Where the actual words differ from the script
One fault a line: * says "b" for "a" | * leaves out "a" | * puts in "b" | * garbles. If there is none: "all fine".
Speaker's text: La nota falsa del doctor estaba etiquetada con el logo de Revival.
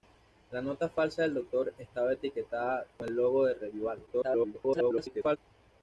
* garbles